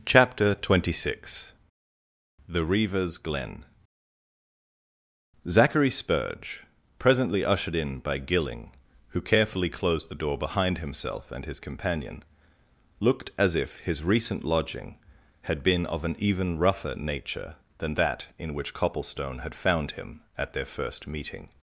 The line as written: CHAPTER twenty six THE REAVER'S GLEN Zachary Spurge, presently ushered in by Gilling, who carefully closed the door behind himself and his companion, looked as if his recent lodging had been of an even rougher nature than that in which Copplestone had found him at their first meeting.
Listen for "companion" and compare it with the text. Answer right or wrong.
right